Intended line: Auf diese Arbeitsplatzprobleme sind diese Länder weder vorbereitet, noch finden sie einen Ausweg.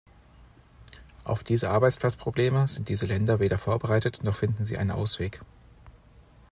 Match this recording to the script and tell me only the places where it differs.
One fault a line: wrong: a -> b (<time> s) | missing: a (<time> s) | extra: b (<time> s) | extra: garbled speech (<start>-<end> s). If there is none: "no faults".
no faults